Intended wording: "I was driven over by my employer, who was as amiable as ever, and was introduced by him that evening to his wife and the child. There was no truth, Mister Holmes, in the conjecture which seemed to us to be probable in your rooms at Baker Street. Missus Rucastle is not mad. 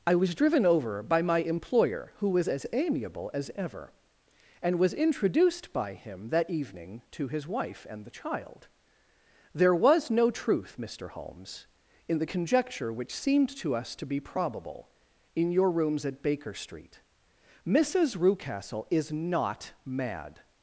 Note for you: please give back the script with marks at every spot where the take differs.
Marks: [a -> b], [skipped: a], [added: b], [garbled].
"I was driven over by my employer, who was as amiable as ever, and was introduced by him that evening to his wife and the child. There was no truth, Mister Holmes, in the conjecture which seemed to us to be probable in your rooms at Baker Street. Missus Rucastle is not mad.